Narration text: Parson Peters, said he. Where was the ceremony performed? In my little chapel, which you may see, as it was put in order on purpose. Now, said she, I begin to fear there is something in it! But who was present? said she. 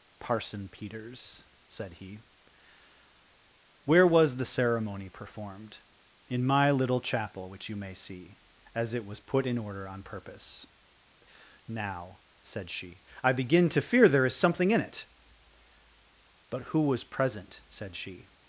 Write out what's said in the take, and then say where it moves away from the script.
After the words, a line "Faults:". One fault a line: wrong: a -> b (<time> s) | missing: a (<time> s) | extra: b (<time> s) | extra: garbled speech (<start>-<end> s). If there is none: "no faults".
Parson Peters, said he. Where was the ceremony performed? In my little chapel, which you may see, as it was put in order on purpose. Now, said she, I begin to fear there is something in it! But who was present? said she.
Faults:
no faults